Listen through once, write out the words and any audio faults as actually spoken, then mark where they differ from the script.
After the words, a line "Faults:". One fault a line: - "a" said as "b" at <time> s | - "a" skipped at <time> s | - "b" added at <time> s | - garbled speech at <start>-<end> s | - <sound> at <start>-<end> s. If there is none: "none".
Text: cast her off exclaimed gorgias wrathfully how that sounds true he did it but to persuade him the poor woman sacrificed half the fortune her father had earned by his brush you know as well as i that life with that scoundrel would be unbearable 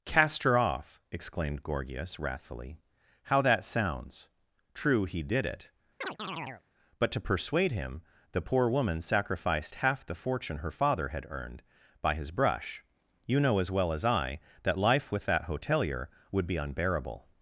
cast her off exclaimed gorgias wrathfully how that sounds true he did it but to persuade him the poor woman sacrificed half the fortune her father had earned by his brush you know as well as i that life with that hotelier would be unbearable
Faults:
- chirp at 6.0-6.6 s
- "scoundrel" said as "hotelier" at 15.4 s